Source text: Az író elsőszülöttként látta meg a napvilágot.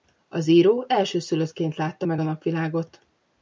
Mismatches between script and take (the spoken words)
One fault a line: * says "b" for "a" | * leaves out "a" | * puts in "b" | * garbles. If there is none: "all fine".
all fine